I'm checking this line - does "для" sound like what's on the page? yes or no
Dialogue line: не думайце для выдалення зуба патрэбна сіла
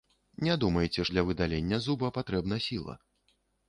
yes